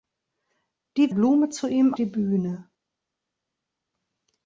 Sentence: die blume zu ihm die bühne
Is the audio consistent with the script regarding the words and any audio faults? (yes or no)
yes